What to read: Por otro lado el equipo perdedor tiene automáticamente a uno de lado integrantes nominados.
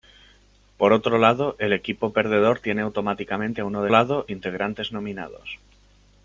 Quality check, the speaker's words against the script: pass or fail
pass